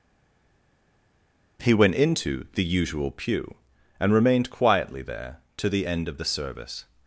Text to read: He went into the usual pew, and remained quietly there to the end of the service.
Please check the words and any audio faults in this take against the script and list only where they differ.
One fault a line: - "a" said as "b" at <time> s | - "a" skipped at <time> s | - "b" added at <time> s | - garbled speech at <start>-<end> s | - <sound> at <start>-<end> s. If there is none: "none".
none